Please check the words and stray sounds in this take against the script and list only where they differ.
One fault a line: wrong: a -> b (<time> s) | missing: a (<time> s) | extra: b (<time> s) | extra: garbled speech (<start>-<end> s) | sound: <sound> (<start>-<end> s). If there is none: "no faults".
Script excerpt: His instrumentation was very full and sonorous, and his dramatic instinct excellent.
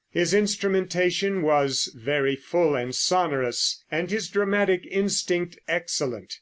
no faults